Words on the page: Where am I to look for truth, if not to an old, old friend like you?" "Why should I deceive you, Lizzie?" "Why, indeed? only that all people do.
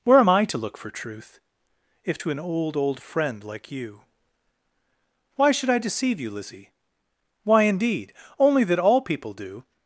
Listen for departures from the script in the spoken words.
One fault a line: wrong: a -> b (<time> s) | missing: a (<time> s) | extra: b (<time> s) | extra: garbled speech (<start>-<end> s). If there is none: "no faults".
missing: not (2.2 s)